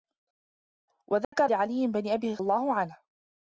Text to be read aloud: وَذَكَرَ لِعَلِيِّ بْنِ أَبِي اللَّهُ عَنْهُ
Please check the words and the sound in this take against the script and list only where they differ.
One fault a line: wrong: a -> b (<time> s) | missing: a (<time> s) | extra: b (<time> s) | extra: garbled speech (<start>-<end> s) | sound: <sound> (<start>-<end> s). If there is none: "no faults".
sound: dropout (1.2-1.3 s)